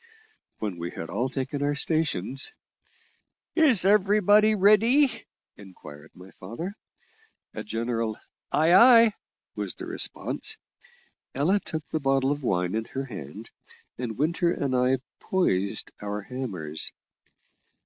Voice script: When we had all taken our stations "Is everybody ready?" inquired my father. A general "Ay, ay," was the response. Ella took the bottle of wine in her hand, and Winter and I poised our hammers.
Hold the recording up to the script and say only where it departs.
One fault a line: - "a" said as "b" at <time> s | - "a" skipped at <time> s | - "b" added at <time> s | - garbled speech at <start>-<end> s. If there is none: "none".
none